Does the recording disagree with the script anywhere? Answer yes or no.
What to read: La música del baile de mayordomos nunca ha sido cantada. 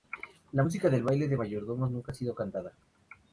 no